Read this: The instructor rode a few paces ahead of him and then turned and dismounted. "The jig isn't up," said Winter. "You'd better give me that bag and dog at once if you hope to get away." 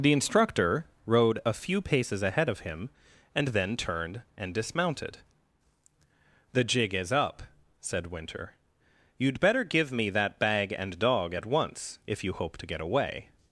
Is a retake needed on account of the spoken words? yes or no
yes